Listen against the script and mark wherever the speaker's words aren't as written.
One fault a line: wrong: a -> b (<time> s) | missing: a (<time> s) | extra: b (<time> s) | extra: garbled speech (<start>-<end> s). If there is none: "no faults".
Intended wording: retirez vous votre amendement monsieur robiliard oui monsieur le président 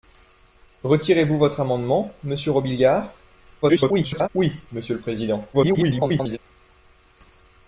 extra: garbled speech (3.6-4.3 s)
extra: garbled speech (5.5-6.4 s)